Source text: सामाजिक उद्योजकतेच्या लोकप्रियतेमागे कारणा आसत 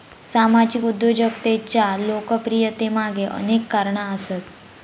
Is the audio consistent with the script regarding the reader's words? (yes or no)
no